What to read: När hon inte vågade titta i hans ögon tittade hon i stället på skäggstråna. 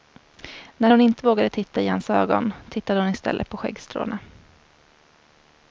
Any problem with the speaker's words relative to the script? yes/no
no